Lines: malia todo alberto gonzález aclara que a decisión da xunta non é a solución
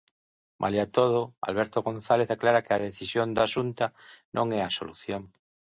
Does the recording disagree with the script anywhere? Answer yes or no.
no